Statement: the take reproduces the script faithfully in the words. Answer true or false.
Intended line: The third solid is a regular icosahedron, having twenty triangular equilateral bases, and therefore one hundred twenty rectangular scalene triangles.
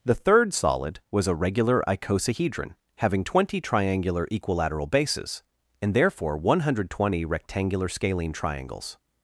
false